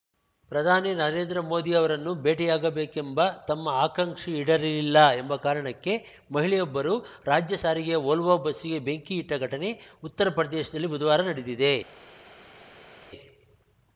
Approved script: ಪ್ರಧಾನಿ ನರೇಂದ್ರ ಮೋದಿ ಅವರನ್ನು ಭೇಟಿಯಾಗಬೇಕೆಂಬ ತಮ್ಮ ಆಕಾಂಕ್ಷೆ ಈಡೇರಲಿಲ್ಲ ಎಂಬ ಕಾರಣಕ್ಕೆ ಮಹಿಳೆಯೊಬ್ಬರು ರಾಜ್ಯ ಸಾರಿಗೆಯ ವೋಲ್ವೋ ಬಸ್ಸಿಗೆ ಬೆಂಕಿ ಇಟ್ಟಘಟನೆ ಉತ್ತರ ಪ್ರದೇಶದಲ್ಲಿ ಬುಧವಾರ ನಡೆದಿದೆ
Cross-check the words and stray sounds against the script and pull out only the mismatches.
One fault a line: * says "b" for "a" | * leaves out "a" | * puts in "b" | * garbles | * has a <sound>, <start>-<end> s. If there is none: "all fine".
all fine